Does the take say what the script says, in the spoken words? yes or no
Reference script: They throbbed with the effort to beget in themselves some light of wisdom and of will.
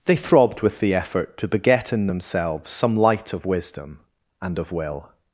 yes